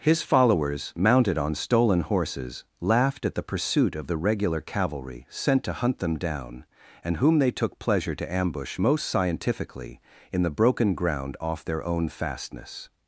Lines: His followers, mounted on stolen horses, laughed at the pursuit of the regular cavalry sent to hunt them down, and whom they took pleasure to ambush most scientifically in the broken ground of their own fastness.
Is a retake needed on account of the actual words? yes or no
yes